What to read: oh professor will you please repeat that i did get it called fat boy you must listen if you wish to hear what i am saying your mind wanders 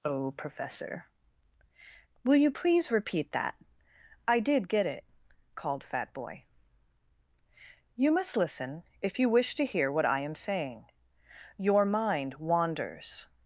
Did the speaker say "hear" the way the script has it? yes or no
yes